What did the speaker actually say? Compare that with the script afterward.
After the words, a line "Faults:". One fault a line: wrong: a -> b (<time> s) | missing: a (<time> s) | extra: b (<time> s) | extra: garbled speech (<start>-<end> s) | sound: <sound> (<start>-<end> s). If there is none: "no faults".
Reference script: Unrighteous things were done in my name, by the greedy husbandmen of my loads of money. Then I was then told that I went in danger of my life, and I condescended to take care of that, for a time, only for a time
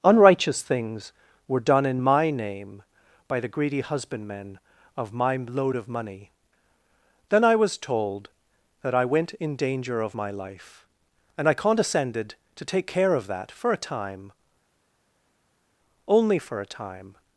Unrighteous things were done in my name, by the greedy husbandmen of my load of money. Then I was told that I went in danger of my life, and I condescended to take care of that, for a time, only for a time
Faults:
wrong: loads -> load (5.4 s)
missing: then (7.8 s)